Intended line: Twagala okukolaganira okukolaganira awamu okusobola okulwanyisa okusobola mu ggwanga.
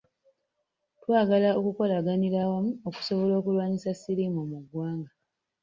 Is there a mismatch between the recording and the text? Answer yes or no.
yes